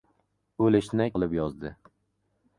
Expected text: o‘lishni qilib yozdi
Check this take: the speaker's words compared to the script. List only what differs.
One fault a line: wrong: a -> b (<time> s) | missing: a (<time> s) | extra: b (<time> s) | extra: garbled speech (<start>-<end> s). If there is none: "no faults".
no faults